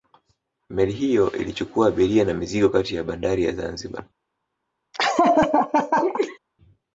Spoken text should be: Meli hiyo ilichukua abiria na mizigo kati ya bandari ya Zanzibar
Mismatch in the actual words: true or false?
false